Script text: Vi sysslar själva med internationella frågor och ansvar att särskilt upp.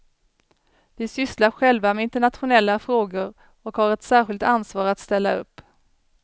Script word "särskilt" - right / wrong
wrong